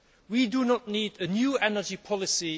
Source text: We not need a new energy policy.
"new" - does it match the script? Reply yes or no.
yes